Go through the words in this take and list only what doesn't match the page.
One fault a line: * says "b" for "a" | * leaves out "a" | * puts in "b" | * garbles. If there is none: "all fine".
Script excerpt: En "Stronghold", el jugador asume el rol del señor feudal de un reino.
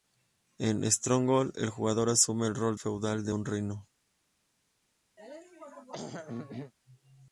* leaves out "del señor"